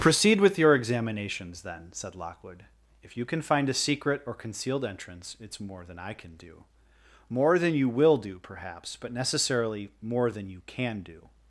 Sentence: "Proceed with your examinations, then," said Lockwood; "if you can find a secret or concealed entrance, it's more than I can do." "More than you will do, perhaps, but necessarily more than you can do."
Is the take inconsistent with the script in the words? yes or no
no